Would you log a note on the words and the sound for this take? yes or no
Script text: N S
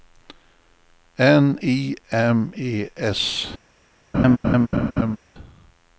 yes